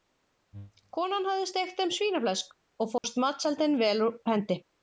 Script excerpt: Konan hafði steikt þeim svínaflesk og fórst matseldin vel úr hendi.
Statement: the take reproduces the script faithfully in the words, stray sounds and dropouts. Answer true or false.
false